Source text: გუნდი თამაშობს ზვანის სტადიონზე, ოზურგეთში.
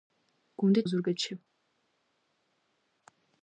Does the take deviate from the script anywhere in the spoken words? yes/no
yes